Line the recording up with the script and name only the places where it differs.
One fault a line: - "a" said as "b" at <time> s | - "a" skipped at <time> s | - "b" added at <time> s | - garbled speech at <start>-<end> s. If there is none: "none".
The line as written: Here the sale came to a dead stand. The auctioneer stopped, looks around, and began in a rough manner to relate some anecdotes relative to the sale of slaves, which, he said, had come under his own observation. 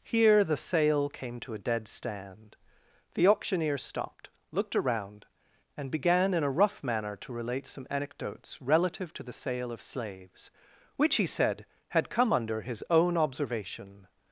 - "looks" said as "looked" at 4.5 s